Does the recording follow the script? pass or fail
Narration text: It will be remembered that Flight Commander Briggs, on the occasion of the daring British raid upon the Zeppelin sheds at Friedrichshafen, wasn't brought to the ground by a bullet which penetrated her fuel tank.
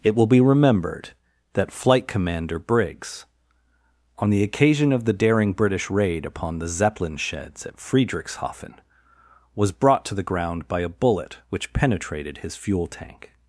fail